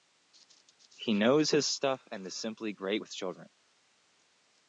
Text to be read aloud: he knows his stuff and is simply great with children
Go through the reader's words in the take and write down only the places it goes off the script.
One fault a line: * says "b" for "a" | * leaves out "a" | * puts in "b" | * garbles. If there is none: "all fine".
all fine